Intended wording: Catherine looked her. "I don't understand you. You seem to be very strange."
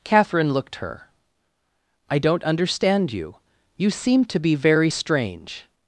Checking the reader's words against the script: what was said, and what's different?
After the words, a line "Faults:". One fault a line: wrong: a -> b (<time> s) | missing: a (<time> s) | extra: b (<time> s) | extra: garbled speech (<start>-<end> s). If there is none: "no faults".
Catherine looked her. "I don't understand you. You seem to be very strange."
Faults:
no faults